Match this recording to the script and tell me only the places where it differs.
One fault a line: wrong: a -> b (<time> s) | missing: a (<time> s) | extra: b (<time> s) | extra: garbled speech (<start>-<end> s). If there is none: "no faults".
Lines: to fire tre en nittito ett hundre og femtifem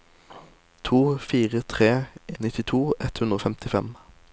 missing: en (1.9 s)